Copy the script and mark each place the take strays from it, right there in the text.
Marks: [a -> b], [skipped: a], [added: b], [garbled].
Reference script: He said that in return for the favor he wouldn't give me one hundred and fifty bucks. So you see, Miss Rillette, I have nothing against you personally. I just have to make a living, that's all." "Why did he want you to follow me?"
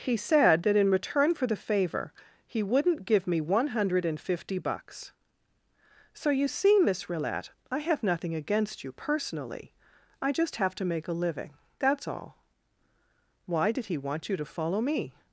He said that in return for the favor he wouldn't give me one hundred and fifty bucks. So you see, Miss Rillette, I have nothing against you personally. I just have to make a living, that's all." "Why did he want you to follow me?"